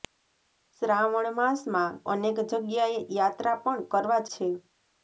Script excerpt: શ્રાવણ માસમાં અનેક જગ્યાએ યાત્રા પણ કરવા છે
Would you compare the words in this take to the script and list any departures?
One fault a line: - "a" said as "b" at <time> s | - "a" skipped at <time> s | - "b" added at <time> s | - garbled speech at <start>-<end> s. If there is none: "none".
none